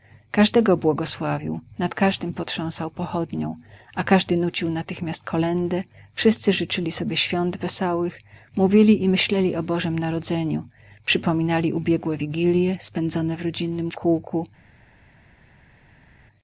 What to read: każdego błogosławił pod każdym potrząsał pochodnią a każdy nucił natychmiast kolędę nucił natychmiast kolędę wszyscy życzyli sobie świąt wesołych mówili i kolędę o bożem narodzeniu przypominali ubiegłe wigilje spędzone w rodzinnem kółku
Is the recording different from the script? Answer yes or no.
yes